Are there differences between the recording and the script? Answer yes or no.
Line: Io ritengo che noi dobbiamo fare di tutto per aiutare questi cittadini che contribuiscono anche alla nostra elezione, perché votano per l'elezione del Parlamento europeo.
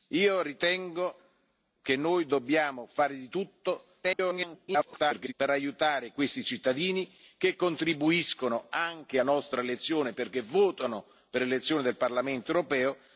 yes